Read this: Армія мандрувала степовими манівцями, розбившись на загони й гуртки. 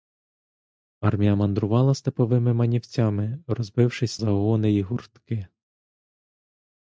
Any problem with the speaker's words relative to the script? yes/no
yes